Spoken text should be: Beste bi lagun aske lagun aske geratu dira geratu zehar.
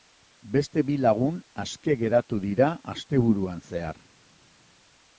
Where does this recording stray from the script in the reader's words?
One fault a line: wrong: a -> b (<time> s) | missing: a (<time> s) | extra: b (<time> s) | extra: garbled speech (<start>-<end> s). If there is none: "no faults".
missing: lagun aske (2.0 s)
wrong: geratu -> asteburuan (2.9 s)